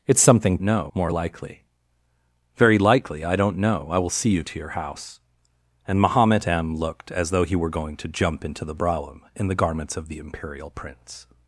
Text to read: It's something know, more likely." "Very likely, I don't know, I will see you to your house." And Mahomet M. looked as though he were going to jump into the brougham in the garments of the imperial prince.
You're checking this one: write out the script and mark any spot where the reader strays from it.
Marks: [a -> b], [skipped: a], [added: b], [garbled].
It's something know, more likely." "Very likely, I don't know, I will see you to your house." And Mahomet M. looked as though he were going to jump into the brougham in the garments of the imperial prince.